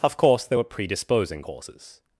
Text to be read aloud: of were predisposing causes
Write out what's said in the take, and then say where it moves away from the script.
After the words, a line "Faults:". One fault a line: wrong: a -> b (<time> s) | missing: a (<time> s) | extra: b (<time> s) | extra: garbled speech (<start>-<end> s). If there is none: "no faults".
of course there were predisposing causes
Faults:
extra: course there (0.2 s)